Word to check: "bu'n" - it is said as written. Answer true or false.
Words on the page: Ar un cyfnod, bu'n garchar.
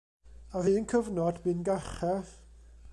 true